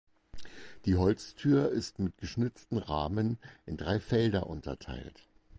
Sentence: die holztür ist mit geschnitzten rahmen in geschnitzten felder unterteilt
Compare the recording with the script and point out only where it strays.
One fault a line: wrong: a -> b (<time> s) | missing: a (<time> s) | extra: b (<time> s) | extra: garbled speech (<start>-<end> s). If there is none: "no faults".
wrong: geschnitzten -> drei (3.8 s)